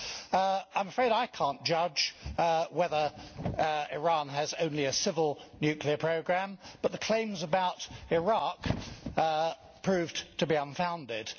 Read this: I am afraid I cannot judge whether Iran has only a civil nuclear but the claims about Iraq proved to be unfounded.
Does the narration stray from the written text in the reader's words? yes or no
yes